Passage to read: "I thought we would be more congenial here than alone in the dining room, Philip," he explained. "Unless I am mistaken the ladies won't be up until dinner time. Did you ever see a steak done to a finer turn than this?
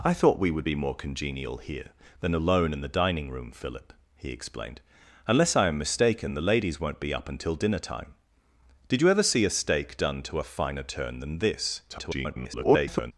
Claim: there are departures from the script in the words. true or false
true